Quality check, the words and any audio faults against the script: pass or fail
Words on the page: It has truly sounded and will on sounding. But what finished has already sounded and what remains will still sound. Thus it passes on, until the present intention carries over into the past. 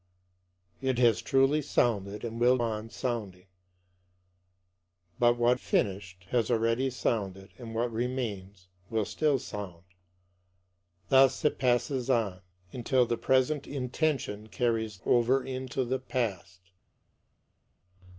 pass